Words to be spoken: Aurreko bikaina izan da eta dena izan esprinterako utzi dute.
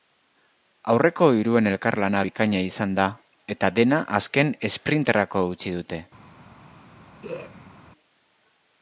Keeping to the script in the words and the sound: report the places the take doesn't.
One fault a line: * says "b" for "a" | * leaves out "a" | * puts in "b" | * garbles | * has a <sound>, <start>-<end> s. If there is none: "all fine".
* puts in "hiruen elkarlana"
* says "azken" for "izan"
* has a throat clearing, 7.2-7.7 s